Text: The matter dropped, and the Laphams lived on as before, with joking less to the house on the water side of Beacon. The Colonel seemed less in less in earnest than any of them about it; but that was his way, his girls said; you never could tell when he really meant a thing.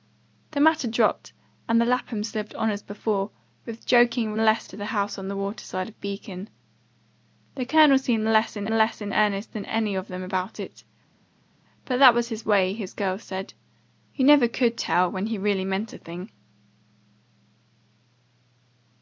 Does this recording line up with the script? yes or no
yes